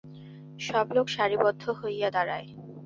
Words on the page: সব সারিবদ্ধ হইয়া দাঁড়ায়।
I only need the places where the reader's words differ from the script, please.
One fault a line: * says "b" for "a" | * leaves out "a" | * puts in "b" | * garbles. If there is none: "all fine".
* puts in "লোক"